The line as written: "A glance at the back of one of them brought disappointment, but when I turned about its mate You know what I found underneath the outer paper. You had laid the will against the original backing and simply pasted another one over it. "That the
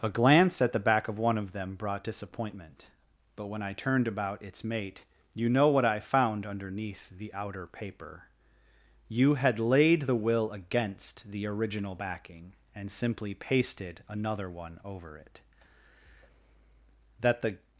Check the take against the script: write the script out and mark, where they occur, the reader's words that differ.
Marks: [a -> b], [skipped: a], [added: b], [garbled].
"A glance at the back of one of them brought disappointment, but when I turned about its mate You know what I found underneath the outer paper. You had laid the will against the original backing and simply pasted another one over it. "That the